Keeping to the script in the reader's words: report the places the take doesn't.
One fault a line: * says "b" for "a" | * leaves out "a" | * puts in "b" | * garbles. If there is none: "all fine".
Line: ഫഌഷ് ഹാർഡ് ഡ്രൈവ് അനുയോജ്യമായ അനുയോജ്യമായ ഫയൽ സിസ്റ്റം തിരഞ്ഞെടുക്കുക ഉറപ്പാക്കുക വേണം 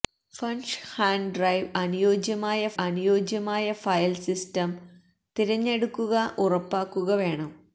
all fine